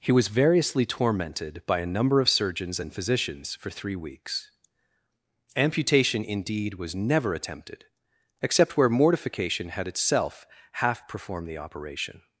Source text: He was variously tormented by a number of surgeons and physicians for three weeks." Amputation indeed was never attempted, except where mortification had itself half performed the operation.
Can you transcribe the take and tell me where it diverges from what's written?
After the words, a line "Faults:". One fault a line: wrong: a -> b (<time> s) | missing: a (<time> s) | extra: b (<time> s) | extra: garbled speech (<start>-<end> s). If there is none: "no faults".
He was variously tormented by a number of surgeons and physicians for three weeks." Amputation indeed was never attempted, except where mortification had itself half performed the operation.
Faults:
no faults